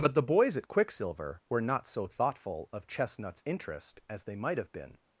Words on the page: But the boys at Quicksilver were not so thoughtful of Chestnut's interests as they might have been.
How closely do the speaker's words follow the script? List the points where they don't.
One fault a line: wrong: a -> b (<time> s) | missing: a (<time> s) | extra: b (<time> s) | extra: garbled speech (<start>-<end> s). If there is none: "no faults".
wrong: interests -> interest (3.5 s)